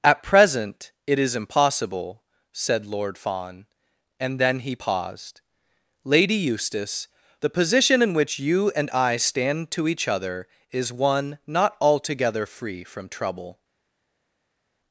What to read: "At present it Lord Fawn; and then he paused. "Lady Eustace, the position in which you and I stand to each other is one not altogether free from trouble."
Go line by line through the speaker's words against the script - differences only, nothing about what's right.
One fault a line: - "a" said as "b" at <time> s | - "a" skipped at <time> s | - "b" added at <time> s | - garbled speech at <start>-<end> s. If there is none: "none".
- "is impossible said" added at 1.2 s